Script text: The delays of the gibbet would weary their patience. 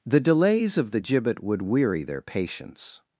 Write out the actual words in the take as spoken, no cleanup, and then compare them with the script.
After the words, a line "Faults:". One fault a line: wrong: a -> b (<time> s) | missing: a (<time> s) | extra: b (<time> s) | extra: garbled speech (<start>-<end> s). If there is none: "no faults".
The delays of the gibbet would weary their patience.
Faults:
no faults